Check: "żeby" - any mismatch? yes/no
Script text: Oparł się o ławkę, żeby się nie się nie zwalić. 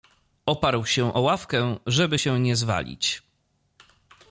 no